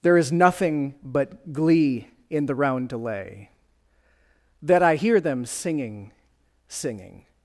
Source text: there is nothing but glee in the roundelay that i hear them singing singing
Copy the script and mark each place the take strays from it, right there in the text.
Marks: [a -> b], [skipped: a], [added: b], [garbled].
there is nothing but glee in the roundelay that i hear them singing singing